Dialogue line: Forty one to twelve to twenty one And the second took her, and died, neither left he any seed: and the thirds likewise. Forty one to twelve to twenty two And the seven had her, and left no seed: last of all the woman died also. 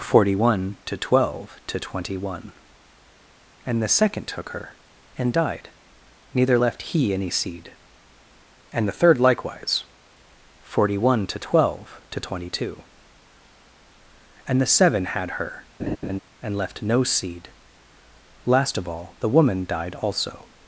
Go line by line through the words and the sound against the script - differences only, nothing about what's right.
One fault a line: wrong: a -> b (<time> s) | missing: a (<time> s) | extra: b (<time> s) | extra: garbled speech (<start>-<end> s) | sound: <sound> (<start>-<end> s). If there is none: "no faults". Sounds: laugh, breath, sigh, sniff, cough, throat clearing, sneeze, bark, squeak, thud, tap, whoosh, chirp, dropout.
wrong: thirds -> third (9.0 s)
sound: laugh (15.8-16.2 s)